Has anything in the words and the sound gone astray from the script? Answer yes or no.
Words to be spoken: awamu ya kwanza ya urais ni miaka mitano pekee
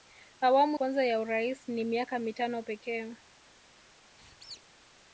yes